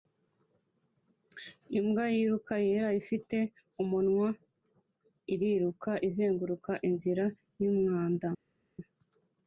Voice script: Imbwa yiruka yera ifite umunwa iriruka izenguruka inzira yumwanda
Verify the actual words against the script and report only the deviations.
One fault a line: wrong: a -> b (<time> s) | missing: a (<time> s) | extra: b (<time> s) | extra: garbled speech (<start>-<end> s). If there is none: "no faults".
no faults